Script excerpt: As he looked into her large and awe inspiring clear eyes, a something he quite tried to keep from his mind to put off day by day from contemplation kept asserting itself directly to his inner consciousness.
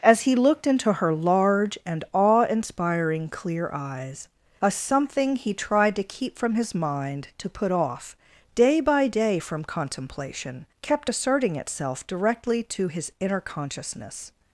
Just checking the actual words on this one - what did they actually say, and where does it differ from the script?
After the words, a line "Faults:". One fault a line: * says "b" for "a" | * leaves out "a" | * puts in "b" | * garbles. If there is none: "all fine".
As he looked into her large and awe inspiring clear eyes, a something he tried to keep from his mind to put off day by day from contemplation kept asserting itself directly to his inner consciousness.
Faults:
* leaves out "quite"